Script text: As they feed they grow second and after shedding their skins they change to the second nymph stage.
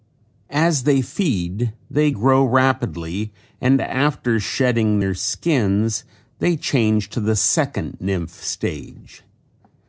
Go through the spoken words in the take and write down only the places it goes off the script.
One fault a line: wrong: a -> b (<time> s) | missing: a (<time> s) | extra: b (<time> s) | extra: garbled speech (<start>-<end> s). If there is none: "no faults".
wrong: second -> rapidly (2.5 s)